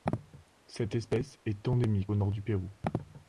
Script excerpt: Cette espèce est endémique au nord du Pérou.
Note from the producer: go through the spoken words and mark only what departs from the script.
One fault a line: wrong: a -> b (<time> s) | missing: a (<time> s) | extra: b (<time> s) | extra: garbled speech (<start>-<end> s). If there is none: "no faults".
no faults